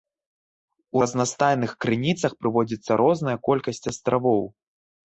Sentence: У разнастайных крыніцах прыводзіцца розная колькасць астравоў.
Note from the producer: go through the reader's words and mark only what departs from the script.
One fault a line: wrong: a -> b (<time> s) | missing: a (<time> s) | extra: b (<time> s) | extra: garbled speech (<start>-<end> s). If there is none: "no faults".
no faults